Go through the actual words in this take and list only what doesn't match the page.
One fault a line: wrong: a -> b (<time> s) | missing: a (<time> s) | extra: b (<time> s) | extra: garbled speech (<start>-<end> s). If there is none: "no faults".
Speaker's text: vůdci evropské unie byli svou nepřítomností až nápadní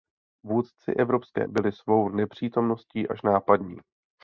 missing: unie (1.5 s)